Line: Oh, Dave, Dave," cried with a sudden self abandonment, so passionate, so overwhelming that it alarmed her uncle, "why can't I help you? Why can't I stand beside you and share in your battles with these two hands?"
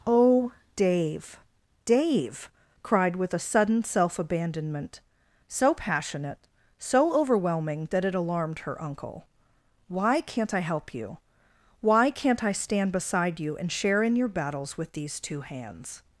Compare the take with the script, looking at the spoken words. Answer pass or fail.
pass